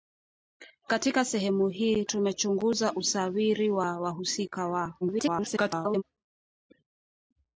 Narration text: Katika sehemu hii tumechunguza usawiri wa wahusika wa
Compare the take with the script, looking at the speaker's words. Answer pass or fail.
fail